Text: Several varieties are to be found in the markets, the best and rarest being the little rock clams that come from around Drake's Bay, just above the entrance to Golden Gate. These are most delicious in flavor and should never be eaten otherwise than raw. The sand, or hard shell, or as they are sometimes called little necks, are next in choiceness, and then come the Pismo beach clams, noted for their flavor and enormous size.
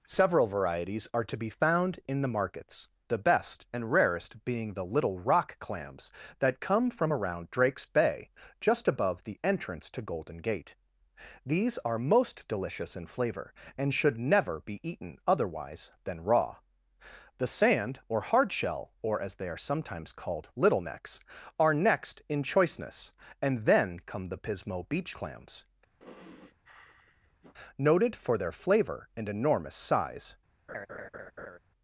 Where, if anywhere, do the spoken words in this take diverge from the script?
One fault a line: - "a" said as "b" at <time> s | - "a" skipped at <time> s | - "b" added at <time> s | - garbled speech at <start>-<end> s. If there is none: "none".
none